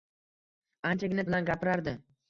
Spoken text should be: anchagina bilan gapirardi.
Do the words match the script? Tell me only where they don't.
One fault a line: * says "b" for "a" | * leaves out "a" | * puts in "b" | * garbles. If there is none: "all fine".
all fine